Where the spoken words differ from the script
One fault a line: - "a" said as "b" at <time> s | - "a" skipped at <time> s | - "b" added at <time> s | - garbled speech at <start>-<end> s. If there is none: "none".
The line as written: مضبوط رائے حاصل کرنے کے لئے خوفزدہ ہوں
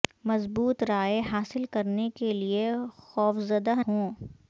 none